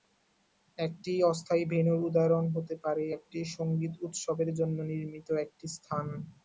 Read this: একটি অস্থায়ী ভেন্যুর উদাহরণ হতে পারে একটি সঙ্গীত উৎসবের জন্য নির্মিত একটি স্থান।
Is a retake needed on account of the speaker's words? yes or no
no